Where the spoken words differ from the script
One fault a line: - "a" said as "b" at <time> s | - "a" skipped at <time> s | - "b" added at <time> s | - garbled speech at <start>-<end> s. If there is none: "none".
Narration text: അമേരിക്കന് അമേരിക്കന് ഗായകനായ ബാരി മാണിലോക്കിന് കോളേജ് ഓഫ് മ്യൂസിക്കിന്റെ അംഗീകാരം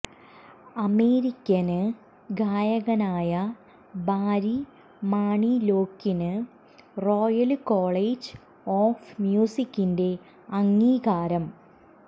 - "അമേരിക്കന്" skipped at 1.8 s
- "റോയല്" added at 7.0 s